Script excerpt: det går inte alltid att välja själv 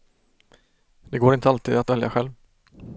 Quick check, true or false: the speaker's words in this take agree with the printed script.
true